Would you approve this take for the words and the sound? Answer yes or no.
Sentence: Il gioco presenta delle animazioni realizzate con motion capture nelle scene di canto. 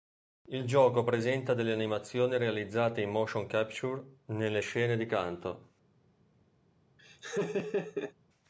no